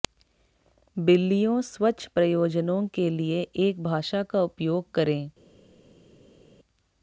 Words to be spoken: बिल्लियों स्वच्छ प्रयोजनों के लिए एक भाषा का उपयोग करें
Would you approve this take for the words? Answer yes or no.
yes